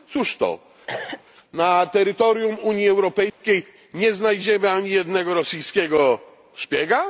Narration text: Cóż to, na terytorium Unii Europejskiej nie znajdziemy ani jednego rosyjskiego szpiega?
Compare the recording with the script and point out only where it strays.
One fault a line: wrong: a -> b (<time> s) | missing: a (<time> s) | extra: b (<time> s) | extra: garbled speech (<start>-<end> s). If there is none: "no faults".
no faults